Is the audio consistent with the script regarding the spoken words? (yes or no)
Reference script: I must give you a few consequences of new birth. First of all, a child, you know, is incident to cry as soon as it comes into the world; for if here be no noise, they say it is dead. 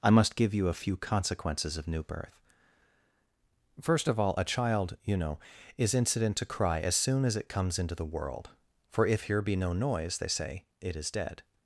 yes